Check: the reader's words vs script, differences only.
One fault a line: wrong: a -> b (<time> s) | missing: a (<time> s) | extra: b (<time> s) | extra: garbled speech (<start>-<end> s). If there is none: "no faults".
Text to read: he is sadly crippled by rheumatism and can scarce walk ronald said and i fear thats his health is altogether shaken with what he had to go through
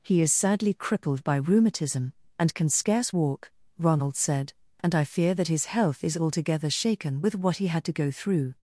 wrong: thats -> that (5.3 s)